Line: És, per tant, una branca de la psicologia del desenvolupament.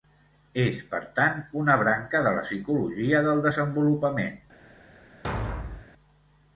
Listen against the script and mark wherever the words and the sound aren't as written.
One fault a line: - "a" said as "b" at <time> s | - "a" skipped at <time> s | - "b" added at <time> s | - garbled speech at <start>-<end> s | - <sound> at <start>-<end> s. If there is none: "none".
- thud at 5.2-5.9 s